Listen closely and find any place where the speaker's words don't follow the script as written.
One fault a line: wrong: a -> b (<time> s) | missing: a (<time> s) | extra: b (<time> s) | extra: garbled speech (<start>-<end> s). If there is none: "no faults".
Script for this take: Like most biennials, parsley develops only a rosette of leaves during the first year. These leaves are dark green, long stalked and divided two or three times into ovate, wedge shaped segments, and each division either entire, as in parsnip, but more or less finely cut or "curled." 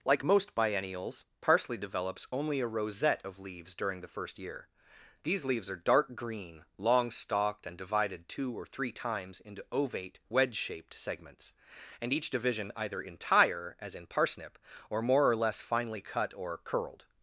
wrong: but -> or (14.9 s)